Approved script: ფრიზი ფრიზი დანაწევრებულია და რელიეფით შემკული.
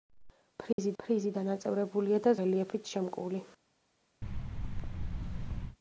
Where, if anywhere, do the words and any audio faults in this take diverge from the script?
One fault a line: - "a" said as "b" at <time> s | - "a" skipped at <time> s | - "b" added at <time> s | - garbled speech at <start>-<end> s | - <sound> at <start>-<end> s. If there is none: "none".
- dropout at 0.7-0.8 s
- thud at 4.2-5.8 s